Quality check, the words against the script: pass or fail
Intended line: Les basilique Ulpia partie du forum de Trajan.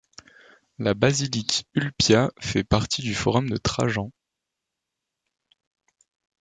fail